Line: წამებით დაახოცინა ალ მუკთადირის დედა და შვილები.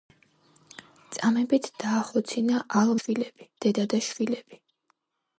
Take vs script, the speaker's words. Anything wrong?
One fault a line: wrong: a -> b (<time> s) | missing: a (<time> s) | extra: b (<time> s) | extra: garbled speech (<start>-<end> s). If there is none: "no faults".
wrong: მუკთადირის -> შვილები (3.0 s)